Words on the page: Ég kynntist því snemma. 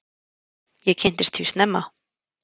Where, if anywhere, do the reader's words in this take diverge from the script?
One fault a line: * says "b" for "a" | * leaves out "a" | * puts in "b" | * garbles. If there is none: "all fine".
all fine